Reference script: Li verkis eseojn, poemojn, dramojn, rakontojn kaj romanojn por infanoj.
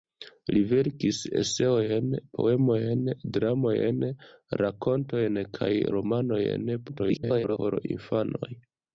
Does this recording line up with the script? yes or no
no